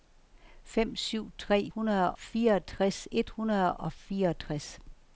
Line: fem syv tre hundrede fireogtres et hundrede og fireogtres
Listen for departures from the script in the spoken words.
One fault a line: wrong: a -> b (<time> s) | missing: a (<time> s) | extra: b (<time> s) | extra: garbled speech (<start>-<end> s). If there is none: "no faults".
no faults